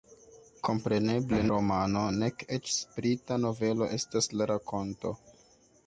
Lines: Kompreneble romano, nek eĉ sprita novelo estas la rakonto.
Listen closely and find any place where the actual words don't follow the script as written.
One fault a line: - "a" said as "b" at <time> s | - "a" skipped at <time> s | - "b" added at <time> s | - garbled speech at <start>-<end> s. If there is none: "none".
none